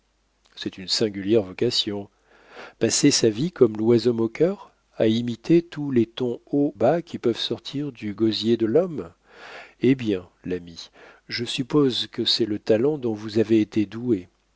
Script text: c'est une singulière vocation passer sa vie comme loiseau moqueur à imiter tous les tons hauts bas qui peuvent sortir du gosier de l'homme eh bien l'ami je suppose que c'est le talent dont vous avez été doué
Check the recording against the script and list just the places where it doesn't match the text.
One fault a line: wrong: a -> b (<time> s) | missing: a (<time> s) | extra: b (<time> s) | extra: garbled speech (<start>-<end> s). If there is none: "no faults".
no faults